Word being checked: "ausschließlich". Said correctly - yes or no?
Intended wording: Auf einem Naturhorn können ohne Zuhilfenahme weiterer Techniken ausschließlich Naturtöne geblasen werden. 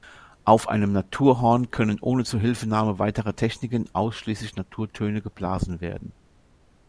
yes